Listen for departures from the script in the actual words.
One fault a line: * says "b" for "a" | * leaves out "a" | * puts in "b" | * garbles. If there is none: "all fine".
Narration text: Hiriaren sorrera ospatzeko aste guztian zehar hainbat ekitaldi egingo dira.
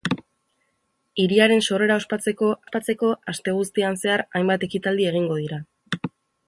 * puts in "ospatzeko"